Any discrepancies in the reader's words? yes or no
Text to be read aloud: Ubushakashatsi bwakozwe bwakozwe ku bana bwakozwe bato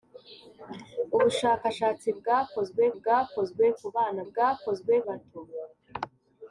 no